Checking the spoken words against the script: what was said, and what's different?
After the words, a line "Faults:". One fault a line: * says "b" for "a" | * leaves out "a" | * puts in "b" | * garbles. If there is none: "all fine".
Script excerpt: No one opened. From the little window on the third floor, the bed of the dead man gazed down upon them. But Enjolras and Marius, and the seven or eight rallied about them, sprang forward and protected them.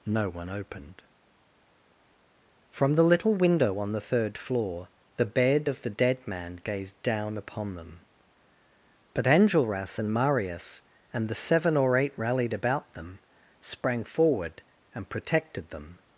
No one opened. From the little window on the third floor, the bed of the dead man gazed down upon them. But Enjolras and Marius, and the seven or eight rallied about them, sprang forward and protected them.
Faults:
all fine